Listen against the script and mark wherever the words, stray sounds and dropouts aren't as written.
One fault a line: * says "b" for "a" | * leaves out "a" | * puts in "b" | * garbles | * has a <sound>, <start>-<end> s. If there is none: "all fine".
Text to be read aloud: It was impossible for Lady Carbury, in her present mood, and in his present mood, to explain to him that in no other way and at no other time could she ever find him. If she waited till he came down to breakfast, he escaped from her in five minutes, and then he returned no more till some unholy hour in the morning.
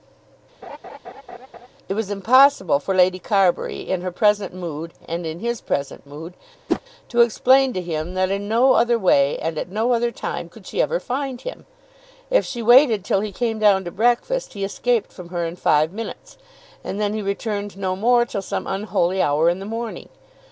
* has a laugh, 0.6-1.7 s
* has a whoosh, 6.7-6.8 s